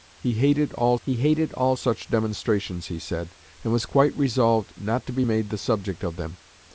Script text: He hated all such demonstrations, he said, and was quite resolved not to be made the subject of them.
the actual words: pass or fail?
fail